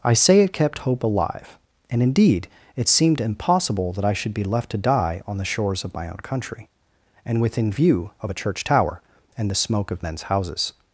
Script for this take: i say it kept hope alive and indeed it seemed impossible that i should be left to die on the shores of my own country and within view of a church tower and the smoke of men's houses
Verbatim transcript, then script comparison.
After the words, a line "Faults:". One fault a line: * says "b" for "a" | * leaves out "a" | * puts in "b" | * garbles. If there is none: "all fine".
i say it kept hope alive and indeed it seemed impossible that i should be left to die on the shores of my own country and within view of a church tower and the smoke of men's houses
Faults:
all fine